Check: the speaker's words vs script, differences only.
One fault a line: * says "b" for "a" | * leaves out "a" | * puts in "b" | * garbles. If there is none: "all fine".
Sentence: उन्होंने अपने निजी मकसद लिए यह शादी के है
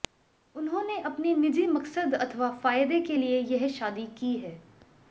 * puts in "अथवा फायदे के"
* says "की" for "के"